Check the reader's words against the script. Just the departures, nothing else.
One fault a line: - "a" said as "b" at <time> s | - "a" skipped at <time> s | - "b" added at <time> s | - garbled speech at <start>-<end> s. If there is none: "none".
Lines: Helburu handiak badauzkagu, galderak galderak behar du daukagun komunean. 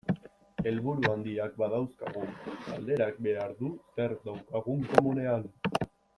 - "galderak" skipped at 3.2 s
- "zer" added at 4.0 s